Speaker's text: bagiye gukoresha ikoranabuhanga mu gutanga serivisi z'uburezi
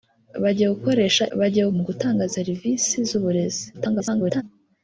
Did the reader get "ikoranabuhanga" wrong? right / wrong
wrong